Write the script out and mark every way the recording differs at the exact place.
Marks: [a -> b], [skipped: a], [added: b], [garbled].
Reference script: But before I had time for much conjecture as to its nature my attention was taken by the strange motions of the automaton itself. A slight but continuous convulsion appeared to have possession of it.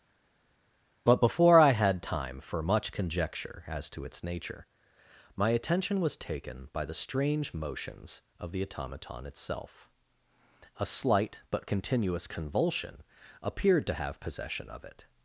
But before I had time for much conjecture as to its nature my attention was taken by the strange motions of the automaton itself. A slight but continuous convulsion appeared to have possession of it.